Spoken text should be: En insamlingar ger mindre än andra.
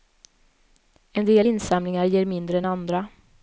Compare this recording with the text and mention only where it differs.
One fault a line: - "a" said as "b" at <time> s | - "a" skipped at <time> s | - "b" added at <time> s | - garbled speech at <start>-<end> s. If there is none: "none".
- "del" added at 1.2 s